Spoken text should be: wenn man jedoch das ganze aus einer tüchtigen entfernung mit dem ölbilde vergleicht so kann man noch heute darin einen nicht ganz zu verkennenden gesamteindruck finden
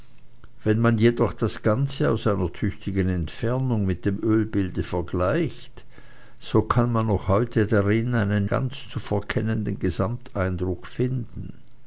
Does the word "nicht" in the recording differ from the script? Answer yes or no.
yes